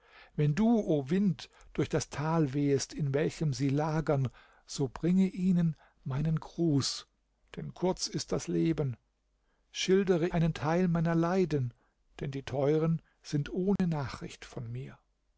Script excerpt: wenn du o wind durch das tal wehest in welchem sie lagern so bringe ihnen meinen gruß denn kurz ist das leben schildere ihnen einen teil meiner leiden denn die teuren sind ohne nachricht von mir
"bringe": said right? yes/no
yes